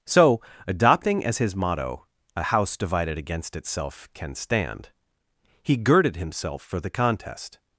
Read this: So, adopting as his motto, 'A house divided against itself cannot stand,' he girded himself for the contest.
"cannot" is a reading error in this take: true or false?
true